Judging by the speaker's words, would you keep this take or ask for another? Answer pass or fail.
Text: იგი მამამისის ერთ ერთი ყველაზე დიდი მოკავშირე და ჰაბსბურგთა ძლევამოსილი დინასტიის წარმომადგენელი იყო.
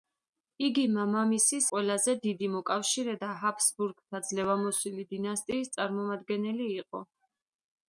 fail